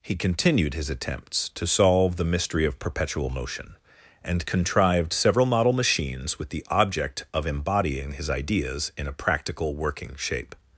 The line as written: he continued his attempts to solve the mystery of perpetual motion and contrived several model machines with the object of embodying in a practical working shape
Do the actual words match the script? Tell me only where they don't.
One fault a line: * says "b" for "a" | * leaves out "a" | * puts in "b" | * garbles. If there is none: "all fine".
* puts in "his ideas"